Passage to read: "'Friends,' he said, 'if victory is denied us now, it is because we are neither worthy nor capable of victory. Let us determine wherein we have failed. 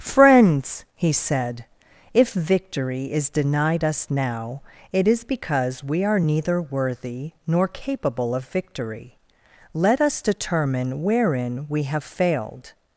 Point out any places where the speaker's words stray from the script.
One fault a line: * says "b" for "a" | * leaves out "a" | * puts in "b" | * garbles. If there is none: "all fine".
all fine